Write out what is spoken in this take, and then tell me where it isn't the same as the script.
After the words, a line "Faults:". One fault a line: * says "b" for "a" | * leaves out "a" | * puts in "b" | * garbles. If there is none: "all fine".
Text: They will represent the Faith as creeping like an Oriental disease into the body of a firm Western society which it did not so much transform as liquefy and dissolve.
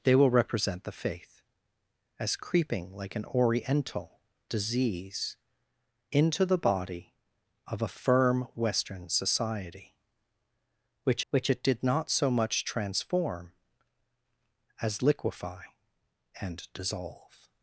They will represent the Faith as creeping like an Oriental disease into the body of a firm Western society which which it did not so much transform as liquefy and dissolve.
Faults:
* puts in "which"